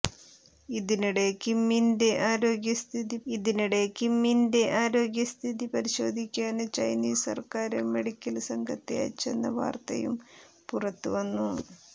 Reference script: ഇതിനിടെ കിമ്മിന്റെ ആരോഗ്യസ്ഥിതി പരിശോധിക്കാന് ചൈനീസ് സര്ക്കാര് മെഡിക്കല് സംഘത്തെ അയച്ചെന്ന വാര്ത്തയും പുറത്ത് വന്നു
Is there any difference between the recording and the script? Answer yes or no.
yes